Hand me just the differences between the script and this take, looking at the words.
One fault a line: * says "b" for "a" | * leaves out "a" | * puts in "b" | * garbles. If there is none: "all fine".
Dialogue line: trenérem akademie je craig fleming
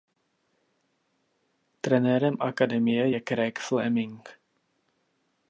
all fine